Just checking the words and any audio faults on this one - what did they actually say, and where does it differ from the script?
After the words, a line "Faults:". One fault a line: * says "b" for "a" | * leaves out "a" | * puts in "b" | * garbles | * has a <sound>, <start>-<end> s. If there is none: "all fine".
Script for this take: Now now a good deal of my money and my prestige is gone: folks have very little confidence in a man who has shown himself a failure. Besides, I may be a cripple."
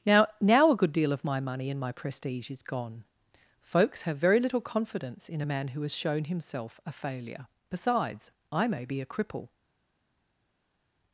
Now now a good deal of my money and my prestige is gone: folks have very little confidence in a man who has shown himself a failure. Besides, I may be a cripple."
Faults:
all fine